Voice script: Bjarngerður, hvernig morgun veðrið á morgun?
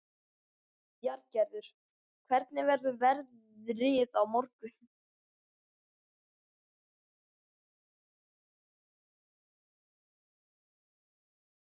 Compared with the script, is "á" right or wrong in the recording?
right